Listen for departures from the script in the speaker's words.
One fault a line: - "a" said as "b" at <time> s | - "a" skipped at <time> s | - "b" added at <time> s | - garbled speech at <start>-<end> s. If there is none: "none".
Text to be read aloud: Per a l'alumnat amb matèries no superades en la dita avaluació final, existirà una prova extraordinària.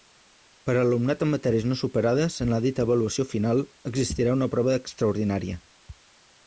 none